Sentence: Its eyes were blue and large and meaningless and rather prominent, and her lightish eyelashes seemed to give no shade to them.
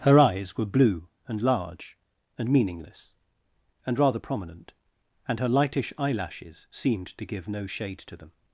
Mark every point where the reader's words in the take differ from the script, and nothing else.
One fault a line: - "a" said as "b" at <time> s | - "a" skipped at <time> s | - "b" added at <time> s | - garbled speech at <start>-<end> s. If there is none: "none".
- "Its" said as "Her" at 0.0 s